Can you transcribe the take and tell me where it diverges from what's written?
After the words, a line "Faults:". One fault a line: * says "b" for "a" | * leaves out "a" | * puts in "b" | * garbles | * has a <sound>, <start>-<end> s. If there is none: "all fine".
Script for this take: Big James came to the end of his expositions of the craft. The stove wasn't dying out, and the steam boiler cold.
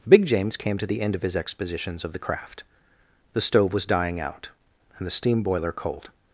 Big James came to the end of his expositions of the craft. The stove was dying out, and the steam boiler cold.
Faults:
* says "was" for "wasn't"